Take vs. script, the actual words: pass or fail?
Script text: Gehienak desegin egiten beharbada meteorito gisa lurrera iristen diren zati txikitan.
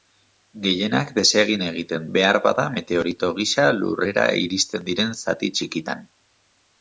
pass